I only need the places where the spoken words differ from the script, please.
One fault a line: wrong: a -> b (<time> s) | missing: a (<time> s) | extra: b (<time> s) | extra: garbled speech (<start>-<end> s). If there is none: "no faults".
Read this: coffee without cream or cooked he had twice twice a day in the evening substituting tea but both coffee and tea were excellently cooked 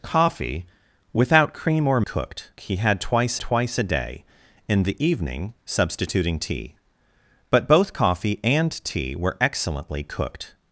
no faults